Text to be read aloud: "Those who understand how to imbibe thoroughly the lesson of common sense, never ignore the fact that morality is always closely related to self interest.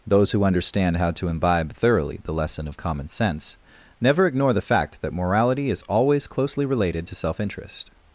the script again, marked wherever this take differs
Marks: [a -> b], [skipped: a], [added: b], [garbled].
"Those who understand how to imbibe thoroughly the lesson of common sense, never ignore the fact that morality is always closely related to self interest.